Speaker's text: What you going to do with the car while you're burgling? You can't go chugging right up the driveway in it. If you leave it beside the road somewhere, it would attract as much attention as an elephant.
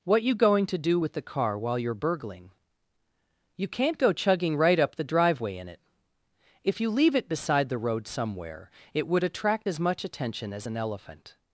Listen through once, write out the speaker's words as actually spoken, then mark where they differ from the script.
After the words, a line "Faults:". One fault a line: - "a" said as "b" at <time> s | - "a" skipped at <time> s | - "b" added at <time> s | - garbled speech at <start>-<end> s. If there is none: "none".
What you going to do with the car while you're burgling? You can't go chugging right up the driveway in it. If you leave it beside the road somewhere, it would attract as much attention as an elephant.
Faults:
none